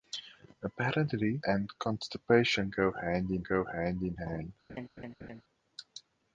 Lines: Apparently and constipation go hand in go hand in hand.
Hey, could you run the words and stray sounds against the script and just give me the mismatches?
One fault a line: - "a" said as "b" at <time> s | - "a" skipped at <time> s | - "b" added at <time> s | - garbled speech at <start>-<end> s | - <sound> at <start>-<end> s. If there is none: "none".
- laugh at 4.7-5.4 s